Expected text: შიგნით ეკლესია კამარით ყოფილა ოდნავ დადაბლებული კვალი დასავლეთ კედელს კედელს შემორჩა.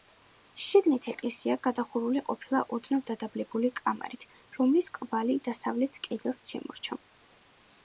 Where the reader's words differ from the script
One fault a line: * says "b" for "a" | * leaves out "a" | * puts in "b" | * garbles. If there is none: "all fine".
* says "გადახურული" for "კამარით"
* puts in "კამარით რომლის"
* leaves out "კედელს"